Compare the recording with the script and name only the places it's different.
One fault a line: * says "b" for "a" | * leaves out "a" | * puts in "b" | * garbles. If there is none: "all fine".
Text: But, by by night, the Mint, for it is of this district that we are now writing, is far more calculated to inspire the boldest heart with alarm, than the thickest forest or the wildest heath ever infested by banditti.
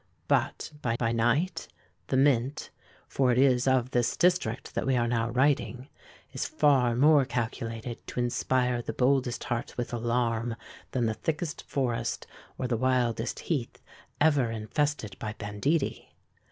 all fine